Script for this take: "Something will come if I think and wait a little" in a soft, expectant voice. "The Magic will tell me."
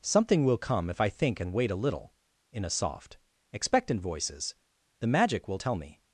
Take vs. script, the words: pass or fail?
fail